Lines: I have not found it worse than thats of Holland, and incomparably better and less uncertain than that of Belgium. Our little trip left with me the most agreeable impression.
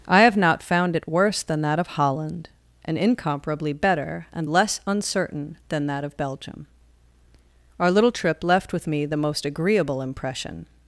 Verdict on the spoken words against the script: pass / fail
fail